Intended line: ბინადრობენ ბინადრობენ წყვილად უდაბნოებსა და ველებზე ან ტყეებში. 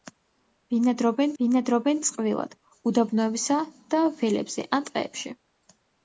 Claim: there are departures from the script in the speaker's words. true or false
false